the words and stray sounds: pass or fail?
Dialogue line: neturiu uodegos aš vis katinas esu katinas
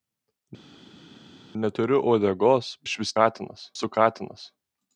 pass